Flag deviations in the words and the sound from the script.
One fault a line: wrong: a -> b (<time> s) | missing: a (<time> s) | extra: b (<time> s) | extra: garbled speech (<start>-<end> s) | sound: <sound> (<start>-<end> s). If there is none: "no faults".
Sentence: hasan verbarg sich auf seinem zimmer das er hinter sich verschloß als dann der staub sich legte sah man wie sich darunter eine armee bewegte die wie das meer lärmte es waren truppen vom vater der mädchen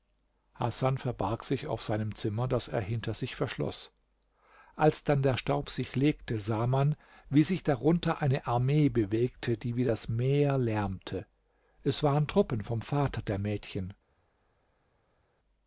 no faults